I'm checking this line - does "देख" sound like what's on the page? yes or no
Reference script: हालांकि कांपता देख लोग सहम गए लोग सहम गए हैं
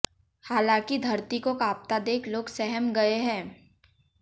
yes